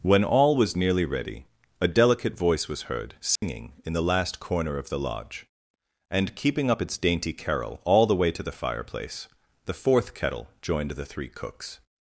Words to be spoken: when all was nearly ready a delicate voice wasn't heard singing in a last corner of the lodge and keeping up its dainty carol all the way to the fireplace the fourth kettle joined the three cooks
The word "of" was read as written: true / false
true